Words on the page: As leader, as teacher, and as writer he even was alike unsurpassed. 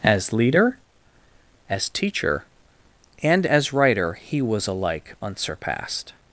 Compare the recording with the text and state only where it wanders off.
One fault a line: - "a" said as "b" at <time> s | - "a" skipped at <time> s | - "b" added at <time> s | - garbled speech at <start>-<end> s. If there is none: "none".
- "even" skipped at 4.4 s